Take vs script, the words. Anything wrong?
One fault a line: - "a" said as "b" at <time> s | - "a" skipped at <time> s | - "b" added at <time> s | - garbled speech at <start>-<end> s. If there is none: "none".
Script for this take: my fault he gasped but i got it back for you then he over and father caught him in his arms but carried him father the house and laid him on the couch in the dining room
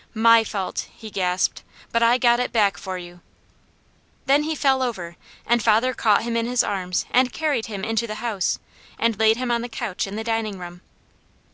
- "fell" added at 4.5 s
- "but" said as "and" at 7.1 s
- "father" said as "into" at 7.8 s